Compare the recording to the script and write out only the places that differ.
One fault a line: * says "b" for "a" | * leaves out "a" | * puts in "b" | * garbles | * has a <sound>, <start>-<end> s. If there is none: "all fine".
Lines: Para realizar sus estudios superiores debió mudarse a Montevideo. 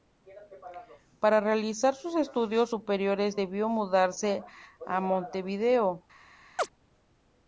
* has a chirp, 6.6-6.7 s